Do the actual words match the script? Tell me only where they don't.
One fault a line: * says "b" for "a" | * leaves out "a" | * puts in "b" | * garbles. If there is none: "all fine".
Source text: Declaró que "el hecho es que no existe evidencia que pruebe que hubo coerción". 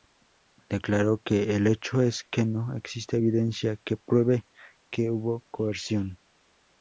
all fine